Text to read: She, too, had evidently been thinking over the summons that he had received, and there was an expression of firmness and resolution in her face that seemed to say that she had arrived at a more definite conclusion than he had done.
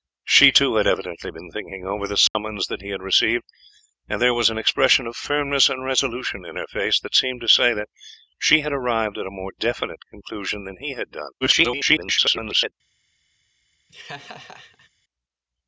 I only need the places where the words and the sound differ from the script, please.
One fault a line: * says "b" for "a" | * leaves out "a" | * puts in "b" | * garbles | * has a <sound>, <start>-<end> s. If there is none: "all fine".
* has a dropout, 2.3-2.3 s
* garbles
* has a laugh, 13.9-14.9 s